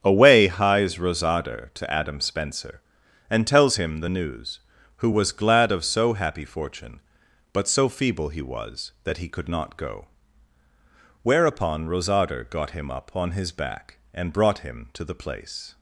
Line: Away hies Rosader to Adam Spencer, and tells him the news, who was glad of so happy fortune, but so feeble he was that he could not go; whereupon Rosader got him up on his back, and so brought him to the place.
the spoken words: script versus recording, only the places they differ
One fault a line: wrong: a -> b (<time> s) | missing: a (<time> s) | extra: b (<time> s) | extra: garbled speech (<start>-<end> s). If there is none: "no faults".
missing: so (14.3 s)